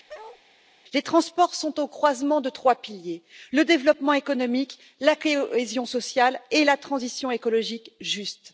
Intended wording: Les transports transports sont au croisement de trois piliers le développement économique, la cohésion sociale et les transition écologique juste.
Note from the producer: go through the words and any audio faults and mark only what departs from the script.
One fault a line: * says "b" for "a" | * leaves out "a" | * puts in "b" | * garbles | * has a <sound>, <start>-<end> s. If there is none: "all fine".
* has a bark, 0.1-0.4 s
* leaves out "transports"
* says "la" for "les"